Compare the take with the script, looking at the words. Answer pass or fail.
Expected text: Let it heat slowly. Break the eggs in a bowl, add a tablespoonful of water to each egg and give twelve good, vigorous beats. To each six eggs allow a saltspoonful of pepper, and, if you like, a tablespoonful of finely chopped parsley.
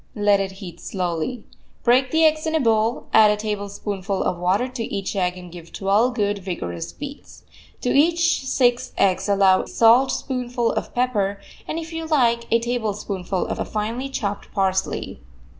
fail